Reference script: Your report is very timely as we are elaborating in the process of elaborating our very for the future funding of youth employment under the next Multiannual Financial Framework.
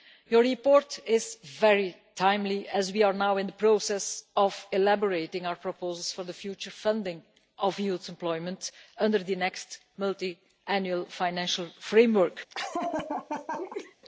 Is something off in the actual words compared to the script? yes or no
yes